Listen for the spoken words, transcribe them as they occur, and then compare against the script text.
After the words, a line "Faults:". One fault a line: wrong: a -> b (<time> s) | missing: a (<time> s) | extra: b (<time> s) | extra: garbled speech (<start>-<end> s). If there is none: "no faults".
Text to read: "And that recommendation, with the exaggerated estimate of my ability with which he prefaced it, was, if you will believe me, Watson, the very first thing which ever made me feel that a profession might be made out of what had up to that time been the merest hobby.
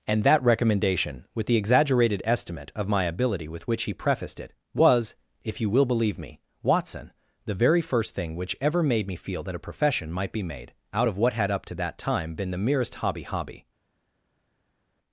"And that recommendation, with the exaggerated estimate of my ability with which he prefaced it, was, if you will believe me, Watson, the very first thing which ever made me feel that a profession might be made out of what had up to that time been the merest hobby hobby.
Faults:
extra: hobby (13.2 s)